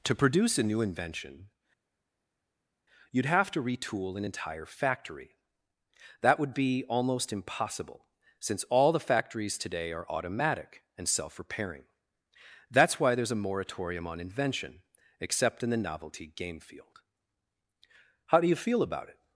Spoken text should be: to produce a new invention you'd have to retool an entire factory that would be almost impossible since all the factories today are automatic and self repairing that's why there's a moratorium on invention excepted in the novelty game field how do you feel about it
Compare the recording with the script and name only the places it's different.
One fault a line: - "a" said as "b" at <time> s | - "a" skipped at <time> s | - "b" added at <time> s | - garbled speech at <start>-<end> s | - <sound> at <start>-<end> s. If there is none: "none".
- "excepted" said as "except" at 15.2 s